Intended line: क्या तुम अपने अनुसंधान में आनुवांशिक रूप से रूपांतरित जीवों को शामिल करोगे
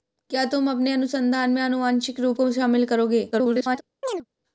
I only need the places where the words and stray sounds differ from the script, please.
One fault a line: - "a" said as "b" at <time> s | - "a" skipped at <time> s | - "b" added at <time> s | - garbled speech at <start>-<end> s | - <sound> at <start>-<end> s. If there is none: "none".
- "से रूपांतरित जीवों" skipped at 2.4 s
- garbled speech at 3.3-3.8 s
- chirp at 4.0-4.3 s